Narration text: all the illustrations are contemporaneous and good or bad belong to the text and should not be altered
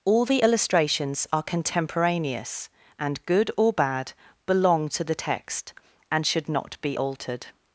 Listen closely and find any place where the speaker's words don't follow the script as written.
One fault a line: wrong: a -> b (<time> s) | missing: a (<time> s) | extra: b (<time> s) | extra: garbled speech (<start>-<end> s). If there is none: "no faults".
no faults